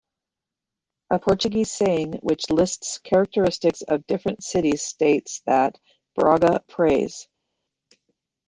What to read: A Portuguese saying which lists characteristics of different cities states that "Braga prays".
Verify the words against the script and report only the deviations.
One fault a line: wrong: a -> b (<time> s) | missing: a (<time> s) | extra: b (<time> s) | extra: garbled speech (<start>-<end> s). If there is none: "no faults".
no faults